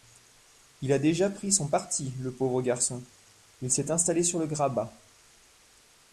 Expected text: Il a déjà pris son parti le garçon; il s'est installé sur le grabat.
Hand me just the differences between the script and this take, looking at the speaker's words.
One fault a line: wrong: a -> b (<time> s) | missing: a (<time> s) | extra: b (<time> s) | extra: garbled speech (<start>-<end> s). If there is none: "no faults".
extra: pauvre (2.3 s)